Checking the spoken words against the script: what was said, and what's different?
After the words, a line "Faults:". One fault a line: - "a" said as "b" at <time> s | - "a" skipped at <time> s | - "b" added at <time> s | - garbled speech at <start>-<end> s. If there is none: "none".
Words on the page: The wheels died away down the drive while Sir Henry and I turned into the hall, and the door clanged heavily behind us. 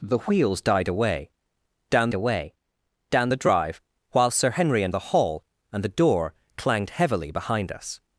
The wheels died away down away down the drive while Sir Henry and the hall, and the door clanged heavily behind us.
Faults:
- "away down" added at 2.1 s
- "I turned into" skipped at 5.0 s